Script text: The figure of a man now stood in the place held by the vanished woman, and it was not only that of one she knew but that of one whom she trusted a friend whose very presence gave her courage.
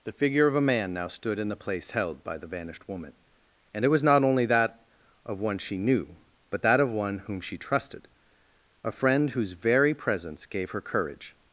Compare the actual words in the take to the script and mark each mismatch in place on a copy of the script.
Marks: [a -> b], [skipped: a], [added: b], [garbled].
The figure of a man now stood in the place held by the vanished woman, and it was not only that of one she knew but that of one whom she trusted a friend whose very presence gave her courage.